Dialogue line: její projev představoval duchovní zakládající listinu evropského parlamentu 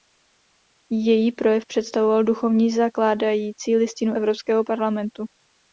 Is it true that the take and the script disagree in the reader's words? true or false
false